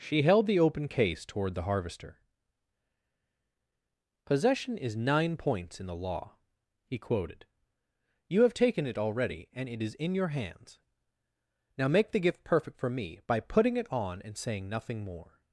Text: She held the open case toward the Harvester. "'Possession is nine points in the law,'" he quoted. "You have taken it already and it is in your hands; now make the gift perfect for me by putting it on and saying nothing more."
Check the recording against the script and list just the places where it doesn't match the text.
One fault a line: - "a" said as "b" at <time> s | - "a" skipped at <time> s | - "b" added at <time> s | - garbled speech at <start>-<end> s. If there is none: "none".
none